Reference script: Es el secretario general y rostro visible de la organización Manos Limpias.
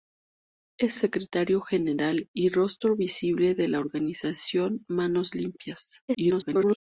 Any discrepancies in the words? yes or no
yes